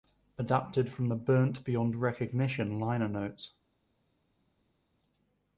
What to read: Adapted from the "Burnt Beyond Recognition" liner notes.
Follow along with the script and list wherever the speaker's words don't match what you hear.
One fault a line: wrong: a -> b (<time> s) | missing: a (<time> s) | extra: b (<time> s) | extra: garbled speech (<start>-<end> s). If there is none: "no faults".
no faults